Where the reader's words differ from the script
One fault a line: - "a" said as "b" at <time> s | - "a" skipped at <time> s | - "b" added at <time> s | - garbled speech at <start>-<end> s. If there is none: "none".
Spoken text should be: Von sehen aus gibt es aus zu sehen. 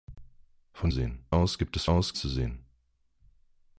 none